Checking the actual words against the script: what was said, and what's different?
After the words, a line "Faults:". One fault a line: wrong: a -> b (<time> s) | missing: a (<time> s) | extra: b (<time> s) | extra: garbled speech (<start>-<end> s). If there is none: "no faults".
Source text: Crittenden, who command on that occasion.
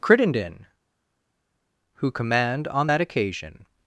Crittenden, who command on that occasion.
Faults:
no faults